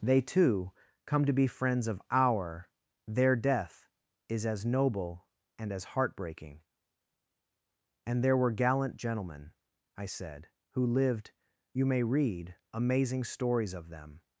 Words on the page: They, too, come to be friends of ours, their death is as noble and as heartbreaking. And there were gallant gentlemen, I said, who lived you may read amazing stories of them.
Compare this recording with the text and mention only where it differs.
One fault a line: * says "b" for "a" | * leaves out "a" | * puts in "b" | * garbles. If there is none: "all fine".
* says "our" for "ours"